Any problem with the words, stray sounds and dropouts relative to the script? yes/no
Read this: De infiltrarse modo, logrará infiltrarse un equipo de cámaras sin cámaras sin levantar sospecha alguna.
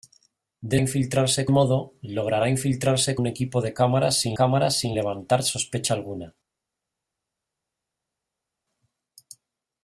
no